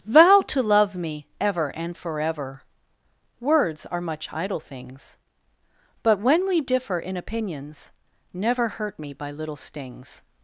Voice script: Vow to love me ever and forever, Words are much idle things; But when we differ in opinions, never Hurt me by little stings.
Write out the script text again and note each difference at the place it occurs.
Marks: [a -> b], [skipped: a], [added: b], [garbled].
Vow to love me ever and forever, Words are much idle things; But when we differ in opinions, never Hurt me by little stings.